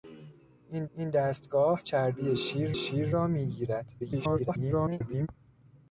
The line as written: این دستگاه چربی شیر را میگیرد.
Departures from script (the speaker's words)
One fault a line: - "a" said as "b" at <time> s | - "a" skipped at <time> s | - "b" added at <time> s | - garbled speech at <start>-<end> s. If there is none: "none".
- "این" added at 0.9 s
- "شیر" added at 2.7 s
- garbled speech at 4.0-5.3 s